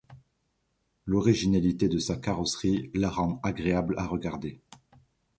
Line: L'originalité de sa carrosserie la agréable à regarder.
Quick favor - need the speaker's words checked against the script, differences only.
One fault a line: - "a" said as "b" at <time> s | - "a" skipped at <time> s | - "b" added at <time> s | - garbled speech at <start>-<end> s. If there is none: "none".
- "rend" added at 3.1 s